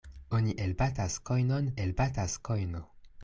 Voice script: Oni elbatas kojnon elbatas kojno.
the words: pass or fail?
pass